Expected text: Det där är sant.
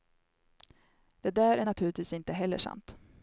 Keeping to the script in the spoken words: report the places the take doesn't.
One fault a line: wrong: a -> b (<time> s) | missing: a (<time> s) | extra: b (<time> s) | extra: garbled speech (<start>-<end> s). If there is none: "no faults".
extra: naturligtvis inte heller (1.6 s)